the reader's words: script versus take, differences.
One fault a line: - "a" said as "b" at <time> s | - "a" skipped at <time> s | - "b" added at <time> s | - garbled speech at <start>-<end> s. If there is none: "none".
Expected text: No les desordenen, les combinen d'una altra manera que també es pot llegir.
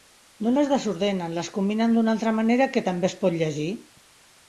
none